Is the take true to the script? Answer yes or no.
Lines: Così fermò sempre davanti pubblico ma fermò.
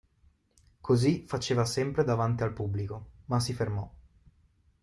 no